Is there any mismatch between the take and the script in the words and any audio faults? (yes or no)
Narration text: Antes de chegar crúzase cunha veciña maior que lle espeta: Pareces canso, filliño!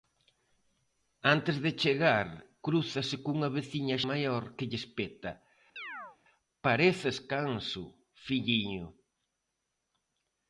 yes